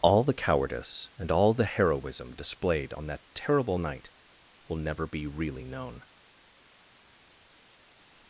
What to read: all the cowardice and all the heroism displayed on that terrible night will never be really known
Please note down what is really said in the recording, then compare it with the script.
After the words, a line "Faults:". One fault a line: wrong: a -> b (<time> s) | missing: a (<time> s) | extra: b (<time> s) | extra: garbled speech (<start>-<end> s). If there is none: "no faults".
all the cowardice and all the heroism displayed on that terrible night will never be really known
Faults:
no faults